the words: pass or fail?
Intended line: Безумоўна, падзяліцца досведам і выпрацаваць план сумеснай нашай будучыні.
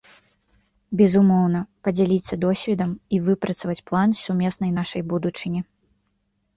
pass